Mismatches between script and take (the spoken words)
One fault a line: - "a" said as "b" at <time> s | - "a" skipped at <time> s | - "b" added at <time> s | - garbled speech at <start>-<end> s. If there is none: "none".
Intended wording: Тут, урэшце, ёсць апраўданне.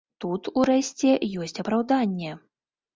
none